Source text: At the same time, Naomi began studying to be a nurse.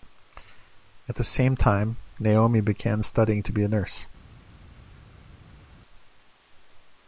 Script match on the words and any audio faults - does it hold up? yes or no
yes